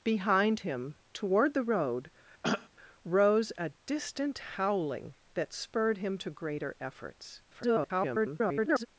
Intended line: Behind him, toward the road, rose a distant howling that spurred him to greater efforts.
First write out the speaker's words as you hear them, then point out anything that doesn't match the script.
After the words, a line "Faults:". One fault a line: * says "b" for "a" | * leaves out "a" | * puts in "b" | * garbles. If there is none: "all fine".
Behind him, toward the road, rose a distant howling that spurred him to greater efforts. [garbled]
Faults:
* garbles